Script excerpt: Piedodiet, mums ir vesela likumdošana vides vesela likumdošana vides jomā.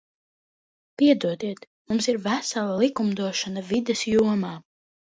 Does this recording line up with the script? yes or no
no